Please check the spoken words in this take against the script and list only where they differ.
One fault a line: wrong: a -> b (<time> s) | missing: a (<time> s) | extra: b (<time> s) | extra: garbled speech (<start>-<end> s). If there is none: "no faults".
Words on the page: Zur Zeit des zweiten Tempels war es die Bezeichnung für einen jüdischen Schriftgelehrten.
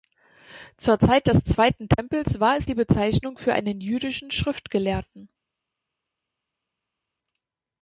no faults